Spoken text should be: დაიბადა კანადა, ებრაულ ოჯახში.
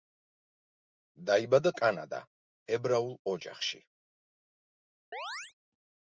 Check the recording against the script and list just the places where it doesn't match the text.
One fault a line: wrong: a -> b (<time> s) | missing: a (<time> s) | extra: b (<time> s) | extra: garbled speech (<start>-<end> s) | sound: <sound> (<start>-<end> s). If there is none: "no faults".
sound: chirp (5.1-5.5 s)